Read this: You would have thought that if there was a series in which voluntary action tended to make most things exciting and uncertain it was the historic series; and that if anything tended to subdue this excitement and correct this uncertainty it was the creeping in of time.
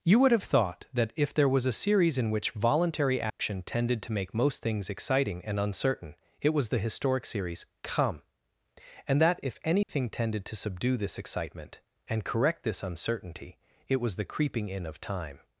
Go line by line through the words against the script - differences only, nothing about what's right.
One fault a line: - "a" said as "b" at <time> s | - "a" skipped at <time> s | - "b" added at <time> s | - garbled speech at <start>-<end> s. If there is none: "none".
- "come" added at 7.8 s